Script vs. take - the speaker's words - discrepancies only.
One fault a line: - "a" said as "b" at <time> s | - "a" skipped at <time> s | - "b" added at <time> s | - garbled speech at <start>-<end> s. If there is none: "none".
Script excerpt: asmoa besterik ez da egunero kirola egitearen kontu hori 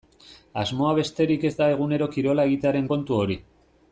none